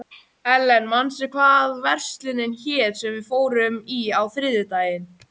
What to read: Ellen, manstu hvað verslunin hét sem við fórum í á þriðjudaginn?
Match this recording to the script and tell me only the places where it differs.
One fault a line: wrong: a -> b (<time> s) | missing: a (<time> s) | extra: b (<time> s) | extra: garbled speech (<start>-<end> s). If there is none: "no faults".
no faults